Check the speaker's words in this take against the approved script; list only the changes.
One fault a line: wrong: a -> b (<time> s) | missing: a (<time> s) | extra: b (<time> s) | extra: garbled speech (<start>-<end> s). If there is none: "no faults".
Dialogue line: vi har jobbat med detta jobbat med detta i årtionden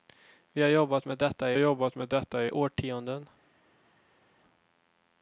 no faults